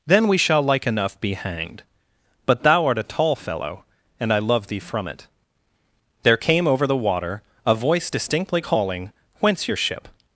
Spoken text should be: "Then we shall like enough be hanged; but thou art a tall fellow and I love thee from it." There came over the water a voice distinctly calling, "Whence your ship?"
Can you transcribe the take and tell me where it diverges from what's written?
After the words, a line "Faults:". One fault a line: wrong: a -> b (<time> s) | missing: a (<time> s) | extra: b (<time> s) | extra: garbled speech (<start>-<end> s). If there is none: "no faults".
"Then we shall like enough be hanged; but thou art a tall fellow and I love thee from it." There came over the water a voice distinctly calling, "Whence your ship?"
Faults:
no faults